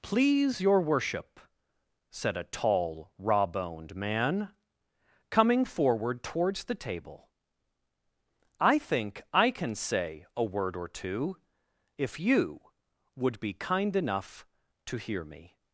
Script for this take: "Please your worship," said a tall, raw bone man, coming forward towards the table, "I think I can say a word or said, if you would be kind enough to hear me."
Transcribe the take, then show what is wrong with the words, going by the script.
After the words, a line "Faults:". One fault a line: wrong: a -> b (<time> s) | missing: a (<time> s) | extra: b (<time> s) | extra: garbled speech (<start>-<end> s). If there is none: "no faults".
"Please your worship," said a tall, raw boned man, coming forward towards the table, "I think I can say a word or two, if you would be kind enough to hear me."
Faults:
wrong: bone -> boned (3.5 s)
wrong: said -> two (10.9 s)